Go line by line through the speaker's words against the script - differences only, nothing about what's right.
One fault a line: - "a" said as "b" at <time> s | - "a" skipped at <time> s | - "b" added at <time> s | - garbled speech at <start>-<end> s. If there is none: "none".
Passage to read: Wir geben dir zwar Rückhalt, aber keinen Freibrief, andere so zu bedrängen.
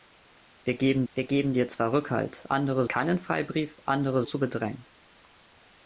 - "wir geben" added at 1.1 s
- "aber" said as "andere" at 2.5 s
- "so" skipped at 4.2 s